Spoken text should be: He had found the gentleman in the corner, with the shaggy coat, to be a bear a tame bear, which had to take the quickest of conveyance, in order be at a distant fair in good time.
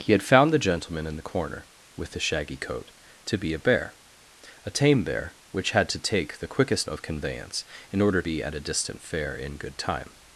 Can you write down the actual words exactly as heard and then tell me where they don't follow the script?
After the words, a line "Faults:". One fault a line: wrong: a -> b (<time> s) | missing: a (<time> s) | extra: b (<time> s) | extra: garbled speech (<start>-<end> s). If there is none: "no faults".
He had found the gentleman in the corner, with the shaggy coat, to be a bear a tame bear, which had to take the quickest of conveyance, in order be at a distant fair in good time.
Faults:
no faults